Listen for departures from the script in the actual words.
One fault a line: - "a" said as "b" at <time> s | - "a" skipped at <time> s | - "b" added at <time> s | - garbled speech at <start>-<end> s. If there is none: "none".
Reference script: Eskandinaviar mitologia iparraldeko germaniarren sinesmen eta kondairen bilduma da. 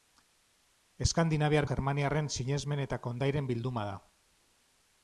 - "mitologia iparraldeko" skipped at 1.7 s